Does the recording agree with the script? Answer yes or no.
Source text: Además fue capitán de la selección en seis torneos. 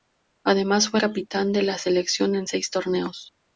yes